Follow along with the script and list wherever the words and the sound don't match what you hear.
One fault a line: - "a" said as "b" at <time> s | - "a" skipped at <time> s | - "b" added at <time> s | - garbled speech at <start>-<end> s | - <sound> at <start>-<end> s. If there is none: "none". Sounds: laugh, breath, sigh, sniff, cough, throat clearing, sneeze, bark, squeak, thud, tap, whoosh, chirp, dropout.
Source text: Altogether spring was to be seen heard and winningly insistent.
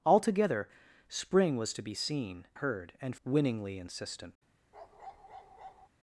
- bark at 4.7-5.9 s